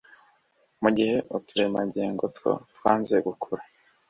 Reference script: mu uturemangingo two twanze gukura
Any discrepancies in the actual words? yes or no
yes